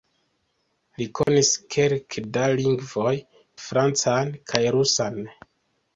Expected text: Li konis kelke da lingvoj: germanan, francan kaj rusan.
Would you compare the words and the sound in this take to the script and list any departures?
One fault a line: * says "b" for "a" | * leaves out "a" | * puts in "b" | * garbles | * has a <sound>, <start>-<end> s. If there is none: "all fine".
* has a dropout, 1.2-1.3 s
* leaves out "germanan"